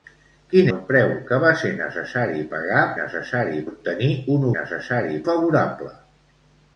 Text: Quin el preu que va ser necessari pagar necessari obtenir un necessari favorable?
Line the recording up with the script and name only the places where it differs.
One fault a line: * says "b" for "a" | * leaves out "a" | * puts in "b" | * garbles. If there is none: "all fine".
all fine